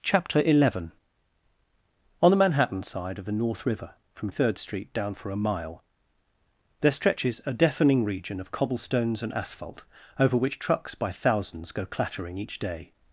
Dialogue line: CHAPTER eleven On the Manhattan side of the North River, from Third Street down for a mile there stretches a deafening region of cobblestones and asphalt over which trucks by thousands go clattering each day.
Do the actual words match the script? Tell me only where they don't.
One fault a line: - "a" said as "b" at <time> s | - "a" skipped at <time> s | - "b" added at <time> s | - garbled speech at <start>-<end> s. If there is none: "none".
none